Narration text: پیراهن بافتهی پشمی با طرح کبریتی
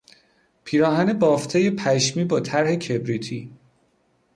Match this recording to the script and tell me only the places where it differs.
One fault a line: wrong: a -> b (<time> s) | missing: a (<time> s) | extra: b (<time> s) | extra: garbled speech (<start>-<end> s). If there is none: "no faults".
no faults